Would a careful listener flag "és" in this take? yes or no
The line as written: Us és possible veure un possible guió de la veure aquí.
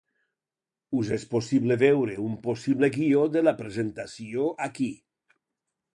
no